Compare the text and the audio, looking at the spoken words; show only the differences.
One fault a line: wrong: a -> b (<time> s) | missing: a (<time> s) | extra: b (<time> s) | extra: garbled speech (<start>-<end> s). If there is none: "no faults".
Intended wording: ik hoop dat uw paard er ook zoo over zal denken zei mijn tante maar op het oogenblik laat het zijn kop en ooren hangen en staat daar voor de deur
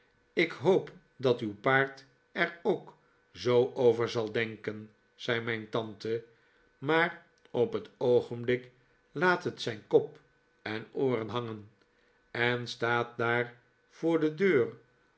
no faults